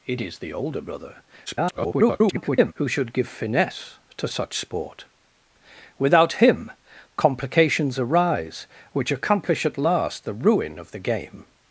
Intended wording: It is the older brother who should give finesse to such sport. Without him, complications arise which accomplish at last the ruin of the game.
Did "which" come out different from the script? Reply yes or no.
no